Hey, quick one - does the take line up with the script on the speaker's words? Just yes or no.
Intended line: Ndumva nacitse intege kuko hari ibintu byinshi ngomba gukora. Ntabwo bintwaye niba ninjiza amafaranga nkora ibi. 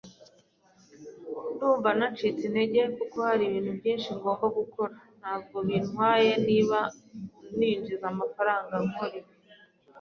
yes